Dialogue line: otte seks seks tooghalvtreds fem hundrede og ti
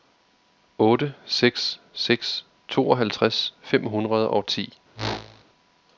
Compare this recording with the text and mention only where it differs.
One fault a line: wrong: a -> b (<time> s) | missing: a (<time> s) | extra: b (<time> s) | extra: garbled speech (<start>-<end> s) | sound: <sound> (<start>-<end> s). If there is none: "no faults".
sound: whoosh (4.9-5.4 s)